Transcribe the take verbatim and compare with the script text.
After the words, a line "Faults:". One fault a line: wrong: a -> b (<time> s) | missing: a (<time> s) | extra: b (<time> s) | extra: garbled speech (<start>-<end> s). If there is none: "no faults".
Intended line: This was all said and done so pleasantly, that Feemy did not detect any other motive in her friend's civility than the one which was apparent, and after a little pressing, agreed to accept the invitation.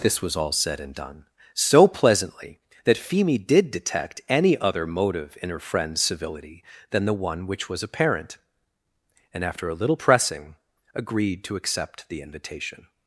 This was all said and done so pleasantly, that Feemy did detect any other motive in her friend's civility than the one which was apparent, and after a little pressing, agreed to accept the invitation.
Faults:
missing: not (3.7 s)